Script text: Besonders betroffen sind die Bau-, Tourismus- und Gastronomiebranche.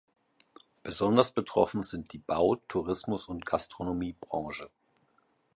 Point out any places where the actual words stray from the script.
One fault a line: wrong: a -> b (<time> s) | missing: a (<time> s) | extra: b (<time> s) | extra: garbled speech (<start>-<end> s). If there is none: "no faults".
no faults